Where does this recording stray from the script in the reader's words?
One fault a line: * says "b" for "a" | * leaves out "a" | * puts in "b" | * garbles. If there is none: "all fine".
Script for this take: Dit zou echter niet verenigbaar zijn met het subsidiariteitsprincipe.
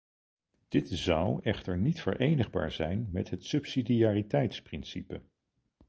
all fine